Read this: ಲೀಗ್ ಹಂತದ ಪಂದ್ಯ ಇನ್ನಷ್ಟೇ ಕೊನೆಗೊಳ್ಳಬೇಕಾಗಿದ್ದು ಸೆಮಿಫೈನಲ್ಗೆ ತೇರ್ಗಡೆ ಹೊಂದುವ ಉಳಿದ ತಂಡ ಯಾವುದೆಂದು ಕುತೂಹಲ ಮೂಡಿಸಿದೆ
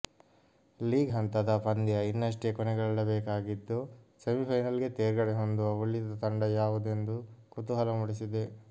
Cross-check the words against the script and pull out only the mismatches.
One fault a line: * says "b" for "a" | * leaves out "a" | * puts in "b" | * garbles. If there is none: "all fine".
all fine